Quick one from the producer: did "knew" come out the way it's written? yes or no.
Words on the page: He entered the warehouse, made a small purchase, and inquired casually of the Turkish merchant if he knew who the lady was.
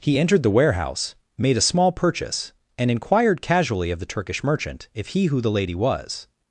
no